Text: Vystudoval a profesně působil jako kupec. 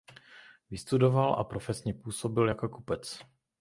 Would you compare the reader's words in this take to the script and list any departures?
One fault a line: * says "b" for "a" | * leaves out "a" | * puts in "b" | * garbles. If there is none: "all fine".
all fine